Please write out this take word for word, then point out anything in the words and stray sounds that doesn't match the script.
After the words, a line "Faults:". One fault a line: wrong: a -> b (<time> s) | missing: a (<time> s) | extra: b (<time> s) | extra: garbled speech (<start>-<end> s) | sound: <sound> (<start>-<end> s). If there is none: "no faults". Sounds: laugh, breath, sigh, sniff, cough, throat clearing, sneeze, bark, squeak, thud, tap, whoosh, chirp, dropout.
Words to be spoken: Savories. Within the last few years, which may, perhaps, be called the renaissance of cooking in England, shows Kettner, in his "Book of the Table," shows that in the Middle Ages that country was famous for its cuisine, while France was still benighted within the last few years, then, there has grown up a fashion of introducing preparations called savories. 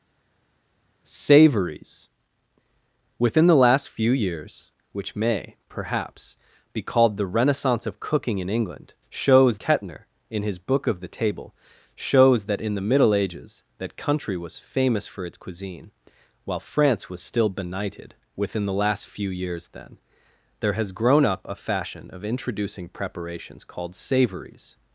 Savories. Within the last few years, which may, perhaps, be called the renaissance of cooking in England, shows Kettner, in his "Book of the Table," shows that in the Middle Ages that country was famous for its cuisine, while France was still benighted within the last few years, then, there has grown up a fashion of introducing preparations called savories.
Faults:
no faults